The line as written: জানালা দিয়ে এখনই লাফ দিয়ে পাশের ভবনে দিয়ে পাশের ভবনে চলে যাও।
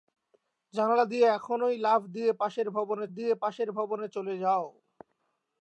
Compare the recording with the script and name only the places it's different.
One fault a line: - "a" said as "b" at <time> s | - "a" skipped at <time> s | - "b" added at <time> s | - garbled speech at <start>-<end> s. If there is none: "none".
none